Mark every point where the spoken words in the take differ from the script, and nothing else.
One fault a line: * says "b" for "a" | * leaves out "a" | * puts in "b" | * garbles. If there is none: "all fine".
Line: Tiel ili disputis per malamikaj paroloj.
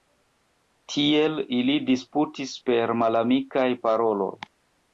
all fine